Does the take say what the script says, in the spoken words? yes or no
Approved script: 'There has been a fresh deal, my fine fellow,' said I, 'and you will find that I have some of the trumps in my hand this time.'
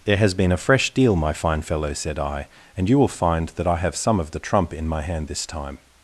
no